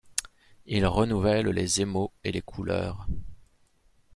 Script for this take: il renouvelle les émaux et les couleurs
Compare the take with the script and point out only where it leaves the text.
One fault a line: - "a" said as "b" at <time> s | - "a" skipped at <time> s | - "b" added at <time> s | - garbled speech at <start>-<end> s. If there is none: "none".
none